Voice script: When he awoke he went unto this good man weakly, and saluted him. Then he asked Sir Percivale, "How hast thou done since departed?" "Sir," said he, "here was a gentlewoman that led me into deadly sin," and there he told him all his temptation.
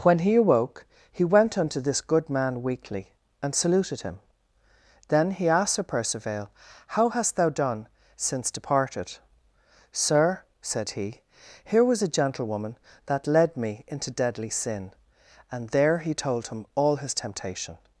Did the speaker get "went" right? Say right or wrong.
right